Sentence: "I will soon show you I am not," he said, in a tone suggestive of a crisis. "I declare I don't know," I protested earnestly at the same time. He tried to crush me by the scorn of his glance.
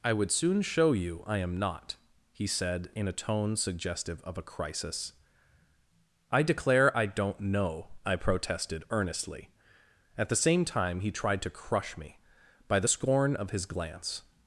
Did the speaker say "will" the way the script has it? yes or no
no